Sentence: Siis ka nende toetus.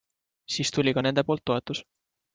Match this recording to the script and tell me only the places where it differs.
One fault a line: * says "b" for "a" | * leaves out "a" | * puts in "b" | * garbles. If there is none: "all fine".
* puts in "tuli"
* puts in "poolt"